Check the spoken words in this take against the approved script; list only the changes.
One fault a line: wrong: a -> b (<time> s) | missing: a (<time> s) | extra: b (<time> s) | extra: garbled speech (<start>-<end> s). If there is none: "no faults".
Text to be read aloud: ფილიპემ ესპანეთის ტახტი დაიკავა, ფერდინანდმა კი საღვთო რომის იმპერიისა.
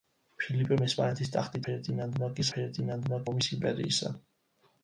missing: დაიკავა (1.6 s)
wrong: საღვთო -> ფერდინანდმა (2.6 s)